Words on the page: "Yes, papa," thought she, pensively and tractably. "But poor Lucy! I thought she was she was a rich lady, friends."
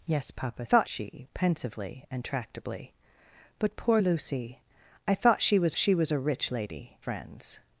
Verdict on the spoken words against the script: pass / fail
pass